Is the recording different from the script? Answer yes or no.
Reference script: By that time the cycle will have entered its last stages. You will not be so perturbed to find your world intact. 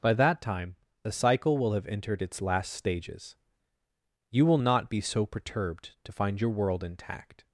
no